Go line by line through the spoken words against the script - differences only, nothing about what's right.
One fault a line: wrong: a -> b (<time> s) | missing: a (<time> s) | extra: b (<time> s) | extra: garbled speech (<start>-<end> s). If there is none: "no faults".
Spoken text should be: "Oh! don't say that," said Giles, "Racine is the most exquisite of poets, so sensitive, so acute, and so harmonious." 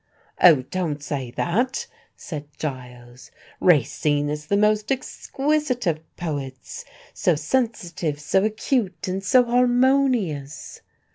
no faults